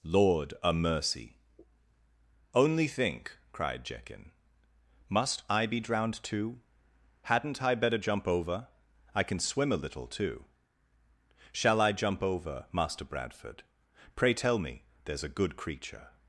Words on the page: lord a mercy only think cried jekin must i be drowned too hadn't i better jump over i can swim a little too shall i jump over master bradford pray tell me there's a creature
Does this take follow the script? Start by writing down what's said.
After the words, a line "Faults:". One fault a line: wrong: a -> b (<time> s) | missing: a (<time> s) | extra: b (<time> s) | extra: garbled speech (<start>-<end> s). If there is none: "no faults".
lord a mercy only think cried jekin must i be drowned too hadn't i better jump over i can swim a little too shall i jump over master bradford pray tell me there's a good creature
Faults:
extra: good (15.3 s)